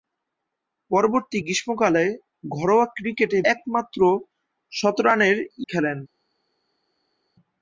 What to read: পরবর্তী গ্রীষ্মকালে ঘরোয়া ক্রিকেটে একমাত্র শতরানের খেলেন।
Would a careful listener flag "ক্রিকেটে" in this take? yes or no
no